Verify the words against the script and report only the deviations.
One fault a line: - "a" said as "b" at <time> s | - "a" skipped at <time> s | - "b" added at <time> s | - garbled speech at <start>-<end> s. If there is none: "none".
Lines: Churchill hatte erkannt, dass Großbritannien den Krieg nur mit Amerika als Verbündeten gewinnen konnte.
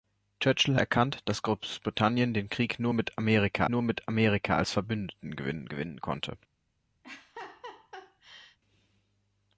- "hatte" skipped at 0.8 s
- "nur mit Amerika" added at 3.7 s
- "gewinnen" added at 5.7 s